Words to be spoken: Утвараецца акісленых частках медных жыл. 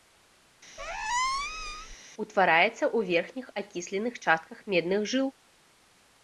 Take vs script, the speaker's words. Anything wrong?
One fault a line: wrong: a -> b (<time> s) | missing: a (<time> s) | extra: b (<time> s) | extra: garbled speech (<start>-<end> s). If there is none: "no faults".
extra: ў верхніх (2.8 s)